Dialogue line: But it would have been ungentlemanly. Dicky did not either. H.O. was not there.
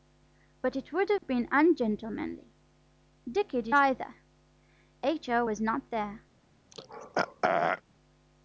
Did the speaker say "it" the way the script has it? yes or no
yes